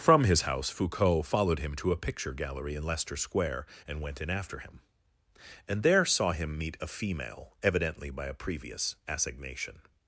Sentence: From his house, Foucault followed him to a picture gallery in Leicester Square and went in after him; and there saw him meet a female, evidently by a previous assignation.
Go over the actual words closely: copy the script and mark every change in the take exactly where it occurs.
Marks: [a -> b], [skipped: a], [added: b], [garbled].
From his house, Foucault followed him to a picture gallery in Leicester Square and went in after him; and there saw him meet a female, evidently by a previous assignation.